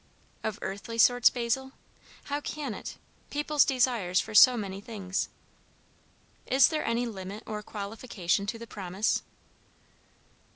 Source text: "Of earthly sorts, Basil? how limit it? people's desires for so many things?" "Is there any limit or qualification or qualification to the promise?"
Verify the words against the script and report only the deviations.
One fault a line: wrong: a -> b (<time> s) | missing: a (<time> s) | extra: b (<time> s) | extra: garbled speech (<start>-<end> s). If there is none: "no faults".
wrong: limit -> can (2.4 s)
missing: or qualification (8.5 s)